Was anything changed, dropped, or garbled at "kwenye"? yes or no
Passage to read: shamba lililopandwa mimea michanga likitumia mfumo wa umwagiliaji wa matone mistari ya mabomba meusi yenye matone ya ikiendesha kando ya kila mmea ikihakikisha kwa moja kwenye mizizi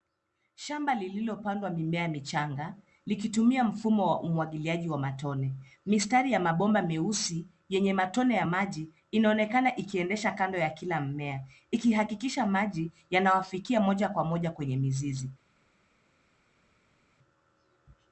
no